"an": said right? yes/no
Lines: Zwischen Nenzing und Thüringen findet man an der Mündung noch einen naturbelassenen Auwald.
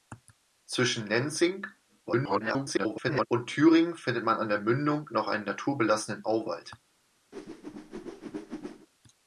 yes